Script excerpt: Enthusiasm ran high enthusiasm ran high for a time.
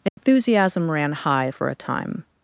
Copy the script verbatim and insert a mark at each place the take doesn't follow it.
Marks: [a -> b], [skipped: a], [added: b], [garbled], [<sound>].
Enthusiasm [dropout] ran high [skipped: enthusiasm ran high] for a time.